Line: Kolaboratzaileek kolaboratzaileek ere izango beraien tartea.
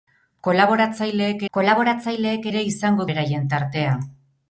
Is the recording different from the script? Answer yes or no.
no